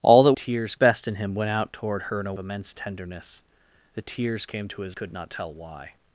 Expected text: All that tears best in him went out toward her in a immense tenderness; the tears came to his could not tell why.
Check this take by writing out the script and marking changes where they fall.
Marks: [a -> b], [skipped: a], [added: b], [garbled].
All that tears best in him went out toward her in a immense tenderness; the tears came to his could not tell why.